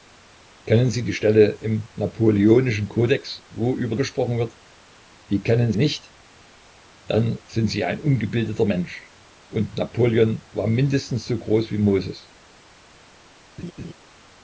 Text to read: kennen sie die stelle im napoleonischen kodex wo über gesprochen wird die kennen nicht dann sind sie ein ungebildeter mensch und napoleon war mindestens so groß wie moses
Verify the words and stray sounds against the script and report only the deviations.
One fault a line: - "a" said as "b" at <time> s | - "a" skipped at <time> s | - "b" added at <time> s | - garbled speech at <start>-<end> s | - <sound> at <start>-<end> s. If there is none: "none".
- laugh at 13.6-13.9 s